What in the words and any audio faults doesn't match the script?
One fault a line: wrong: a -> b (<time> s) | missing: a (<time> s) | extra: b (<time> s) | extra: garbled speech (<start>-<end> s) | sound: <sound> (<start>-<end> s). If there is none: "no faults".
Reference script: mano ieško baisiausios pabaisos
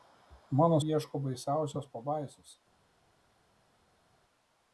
no faults